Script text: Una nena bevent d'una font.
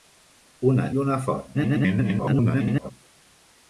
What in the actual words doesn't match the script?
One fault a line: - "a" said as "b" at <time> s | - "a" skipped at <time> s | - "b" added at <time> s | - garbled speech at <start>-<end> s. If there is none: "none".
- "nena bevent" skipped at 0.8 s
- garbled speech at 1.5-2.9 s